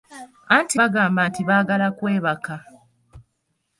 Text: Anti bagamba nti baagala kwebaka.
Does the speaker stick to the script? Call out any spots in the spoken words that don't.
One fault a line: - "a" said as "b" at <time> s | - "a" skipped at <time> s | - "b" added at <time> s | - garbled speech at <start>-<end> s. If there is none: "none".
none